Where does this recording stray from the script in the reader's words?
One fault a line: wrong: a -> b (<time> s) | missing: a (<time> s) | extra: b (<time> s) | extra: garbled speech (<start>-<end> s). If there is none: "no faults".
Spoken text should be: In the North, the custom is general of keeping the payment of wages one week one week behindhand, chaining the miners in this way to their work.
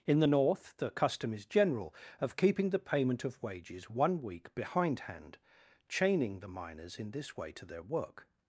missing: one week (4.5 s)